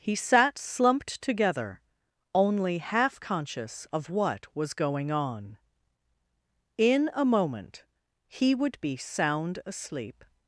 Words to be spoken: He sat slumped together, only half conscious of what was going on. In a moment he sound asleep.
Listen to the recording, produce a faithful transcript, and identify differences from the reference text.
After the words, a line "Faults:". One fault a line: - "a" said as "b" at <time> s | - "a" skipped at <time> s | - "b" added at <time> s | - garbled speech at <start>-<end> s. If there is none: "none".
He sat slumped together, only half conscious of what was going on. In a moment he would be sound asleep.
Faults:
- "would be" added at 8.5 s